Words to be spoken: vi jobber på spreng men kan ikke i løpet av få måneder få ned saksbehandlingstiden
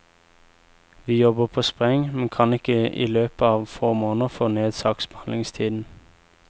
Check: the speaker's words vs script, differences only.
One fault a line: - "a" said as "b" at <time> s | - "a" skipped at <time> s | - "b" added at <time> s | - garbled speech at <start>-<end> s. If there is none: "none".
none